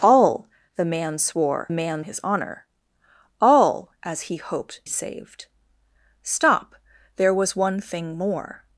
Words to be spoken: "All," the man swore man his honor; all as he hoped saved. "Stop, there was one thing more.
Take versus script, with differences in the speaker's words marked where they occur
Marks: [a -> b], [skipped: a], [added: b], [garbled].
"All," the man swore man his honor; all as he hoped saved. "Stop, there was one thing more.